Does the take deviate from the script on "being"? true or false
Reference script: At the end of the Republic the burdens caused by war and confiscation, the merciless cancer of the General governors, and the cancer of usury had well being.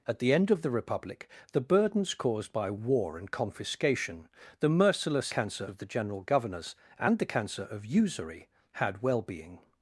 false